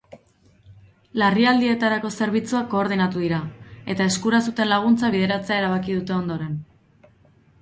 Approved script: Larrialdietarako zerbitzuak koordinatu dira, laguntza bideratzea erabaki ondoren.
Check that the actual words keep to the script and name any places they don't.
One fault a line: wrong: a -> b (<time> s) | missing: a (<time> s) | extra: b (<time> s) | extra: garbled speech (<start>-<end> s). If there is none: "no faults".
extra: eta eskura zuten (4.0 s)
extra: dute (6.0 s)